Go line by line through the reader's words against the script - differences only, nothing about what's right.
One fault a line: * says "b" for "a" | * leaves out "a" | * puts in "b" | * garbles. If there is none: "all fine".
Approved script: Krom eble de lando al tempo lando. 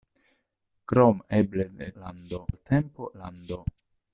all fine